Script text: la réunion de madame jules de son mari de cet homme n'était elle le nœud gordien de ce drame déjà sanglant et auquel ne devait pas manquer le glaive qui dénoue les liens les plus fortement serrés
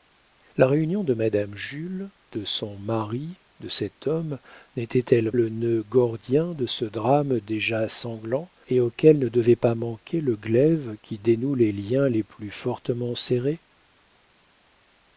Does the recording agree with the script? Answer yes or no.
yes